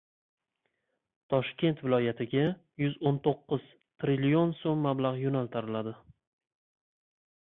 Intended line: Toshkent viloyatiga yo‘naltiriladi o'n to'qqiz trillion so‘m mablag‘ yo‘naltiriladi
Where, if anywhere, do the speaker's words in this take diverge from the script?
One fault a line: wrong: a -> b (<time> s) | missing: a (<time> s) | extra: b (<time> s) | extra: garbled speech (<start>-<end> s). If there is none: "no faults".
wrong: yo‘naltiriladi -> yuz (2.9 s)